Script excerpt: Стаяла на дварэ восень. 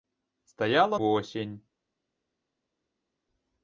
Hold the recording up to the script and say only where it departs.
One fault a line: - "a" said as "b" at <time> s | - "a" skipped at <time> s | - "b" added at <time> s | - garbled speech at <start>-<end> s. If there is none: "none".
- "на дварэ" skipped at 1.0 s